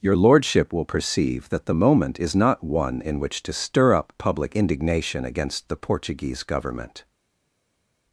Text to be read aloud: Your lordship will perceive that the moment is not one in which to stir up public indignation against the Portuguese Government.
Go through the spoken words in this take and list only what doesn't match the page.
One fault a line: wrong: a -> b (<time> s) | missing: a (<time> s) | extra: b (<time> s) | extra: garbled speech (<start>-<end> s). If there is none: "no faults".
no faults